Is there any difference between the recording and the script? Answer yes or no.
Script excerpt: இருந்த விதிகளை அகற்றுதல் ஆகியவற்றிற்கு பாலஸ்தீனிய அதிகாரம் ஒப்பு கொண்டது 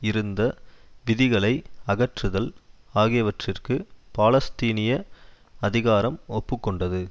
no